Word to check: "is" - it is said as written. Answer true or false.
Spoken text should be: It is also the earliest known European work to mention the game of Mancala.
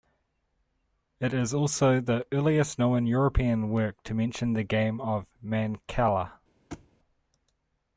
true